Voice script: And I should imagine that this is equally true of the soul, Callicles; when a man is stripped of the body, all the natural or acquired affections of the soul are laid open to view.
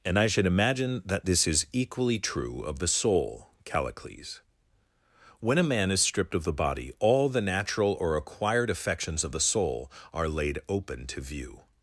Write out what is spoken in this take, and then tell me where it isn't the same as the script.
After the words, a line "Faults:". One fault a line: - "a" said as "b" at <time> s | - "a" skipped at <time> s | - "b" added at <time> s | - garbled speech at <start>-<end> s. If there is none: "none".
And I should imagine that this is equally true of the soul, Callicles; when a man is stripped of the body, all the natural or acquired affections of the soul are laid open to view.
Faults:
none